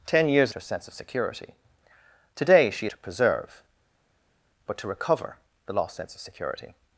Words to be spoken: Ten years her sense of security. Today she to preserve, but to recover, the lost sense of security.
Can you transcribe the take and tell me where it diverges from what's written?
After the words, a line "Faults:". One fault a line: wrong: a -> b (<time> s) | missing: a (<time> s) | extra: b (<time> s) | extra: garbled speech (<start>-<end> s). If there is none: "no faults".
Ten years her sense of security. Today she to preserve, but to recover, the lost sense of security.
Faults:
no faults